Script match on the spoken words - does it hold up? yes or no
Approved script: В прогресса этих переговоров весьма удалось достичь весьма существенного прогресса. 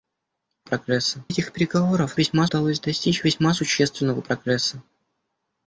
yes